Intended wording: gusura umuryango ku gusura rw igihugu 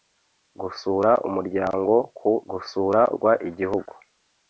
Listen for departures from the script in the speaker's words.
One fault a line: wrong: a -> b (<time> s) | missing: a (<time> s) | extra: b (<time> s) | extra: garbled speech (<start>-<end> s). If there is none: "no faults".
no faults